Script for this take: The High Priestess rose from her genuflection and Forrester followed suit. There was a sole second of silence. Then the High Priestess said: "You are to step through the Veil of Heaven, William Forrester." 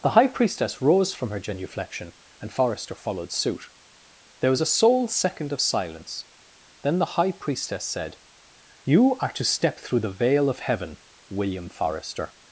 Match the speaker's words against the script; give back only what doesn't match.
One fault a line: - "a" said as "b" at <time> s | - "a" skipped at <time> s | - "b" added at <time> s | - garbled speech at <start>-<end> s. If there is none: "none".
none